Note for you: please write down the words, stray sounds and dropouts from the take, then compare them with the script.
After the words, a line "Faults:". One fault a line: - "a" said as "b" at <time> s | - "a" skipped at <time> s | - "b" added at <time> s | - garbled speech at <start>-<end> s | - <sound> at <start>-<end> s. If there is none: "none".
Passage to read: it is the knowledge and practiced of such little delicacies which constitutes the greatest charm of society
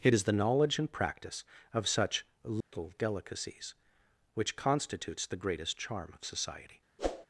it is the knowledge and practice of such little delicacies which constitutes the greatest charm of society
Faults:
- "practiced" said as "practice" at 0.9 s
- dropout at 2.6-2.7 s
- whoosh at 7.0-7.3 s